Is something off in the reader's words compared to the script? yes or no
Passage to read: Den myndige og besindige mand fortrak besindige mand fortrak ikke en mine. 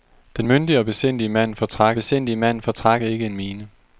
no